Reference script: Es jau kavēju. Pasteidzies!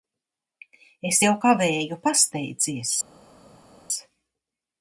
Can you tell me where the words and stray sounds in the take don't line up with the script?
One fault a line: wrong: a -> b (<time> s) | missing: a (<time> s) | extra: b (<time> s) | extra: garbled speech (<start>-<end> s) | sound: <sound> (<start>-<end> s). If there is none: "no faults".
no faults